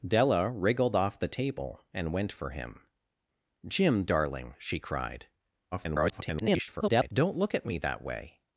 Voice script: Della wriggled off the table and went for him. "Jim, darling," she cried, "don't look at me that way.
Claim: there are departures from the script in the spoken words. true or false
true